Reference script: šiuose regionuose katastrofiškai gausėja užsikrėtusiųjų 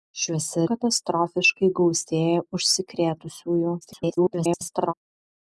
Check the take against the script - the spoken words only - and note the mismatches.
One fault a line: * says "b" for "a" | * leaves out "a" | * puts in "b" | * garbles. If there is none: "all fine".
* leaves out "regionuose"
* garbles